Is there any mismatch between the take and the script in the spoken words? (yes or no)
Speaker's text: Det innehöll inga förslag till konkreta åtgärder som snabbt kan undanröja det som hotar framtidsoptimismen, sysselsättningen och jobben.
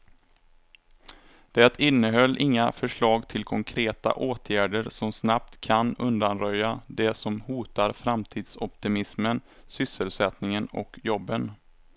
no